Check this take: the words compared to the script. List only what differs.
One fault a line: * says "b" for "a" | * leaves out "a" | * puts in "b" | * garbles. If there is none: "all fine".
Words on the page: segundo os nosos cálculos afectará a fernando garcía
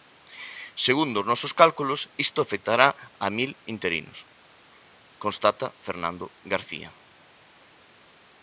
* puts in "isto"
* puts in "mil interinos constata"